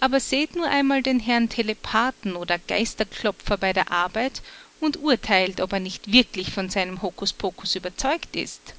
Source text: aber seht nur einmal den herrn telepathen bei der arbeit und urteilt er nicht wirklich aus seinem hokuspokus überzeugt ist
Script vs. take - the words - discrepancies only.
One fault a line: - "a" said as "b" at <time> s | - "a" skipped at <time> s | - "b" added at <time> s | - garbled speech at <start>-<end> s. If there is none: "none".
- "oder geisterklopfer" added at 2.4 s
- "ob" added at 5.6 s
- "aus" said as "von" at 6.5 s